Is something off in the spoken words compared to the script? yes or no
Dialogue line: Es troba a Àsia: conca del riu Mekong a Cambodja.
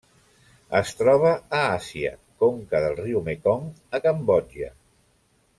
no